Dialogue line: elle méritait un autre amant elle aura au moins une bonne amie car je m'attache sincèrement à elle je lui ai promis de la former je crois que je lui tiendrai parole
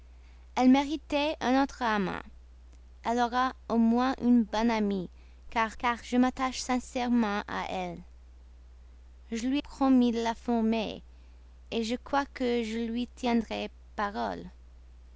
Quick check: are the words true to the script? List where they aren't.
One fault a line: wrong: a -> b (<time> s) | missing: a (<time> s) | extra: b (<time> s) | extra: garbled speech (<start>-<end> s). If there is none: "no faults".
extra: car (5.8 s)
missing: ai (9.6 s)